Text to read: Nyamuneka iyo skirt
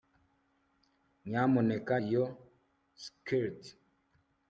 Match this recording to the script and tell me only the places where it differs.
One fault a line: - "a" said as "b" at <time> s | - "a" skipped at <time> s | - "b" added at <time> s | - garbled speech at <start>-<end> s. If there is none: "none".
none